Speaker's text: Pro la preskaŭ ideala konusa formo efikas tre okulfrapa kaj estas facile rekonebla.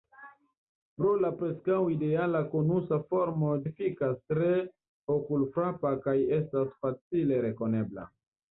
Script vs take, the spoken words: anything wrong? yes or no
no